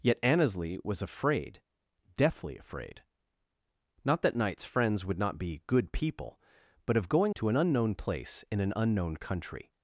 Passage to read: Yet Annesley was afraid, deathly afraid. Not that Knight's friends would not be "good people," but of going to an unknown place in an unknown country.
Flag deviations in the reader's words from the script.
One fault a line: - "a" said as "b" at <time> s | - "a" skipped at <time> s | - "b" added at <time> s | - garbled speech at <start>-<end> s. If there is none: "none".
none